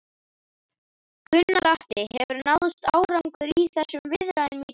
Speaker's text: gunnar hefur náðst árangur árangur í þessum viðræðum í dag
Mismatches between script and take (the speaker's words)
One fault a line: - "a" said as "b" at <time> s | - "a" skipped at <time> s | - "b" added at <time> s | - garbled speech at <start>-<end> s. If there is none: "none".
- "atli" added at 1.7 s
- "árangur" skipped at 3.5 s